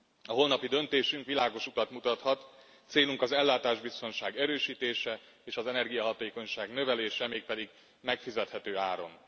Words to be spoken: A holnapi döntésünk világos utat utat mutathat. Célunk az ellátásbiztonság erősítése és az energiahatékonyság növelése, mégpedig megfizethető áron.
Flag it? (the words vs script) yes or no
yes